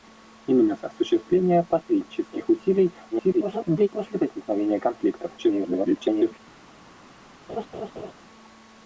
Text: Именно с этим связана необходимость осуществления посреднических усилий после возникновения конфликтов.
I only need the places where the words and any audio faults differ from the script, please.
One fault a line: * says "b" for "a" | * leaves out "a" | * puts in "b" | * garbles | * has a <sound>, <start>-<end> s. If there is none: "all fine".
* leaves out "этим связана необходимость"
* garbles
* garbles
* has a laugh, 7.5-8.1 s